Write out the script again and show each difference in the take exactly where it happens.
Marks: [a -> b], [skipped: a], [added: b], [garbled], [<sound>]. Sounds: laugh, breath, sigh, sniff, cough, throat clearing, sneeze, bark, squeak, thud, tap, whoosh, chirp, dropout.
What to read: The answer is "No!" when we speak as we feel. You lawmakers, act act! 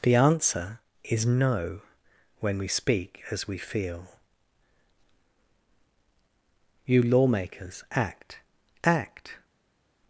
The answer is "No!" when we speak as we feel. You lawmakers, act act!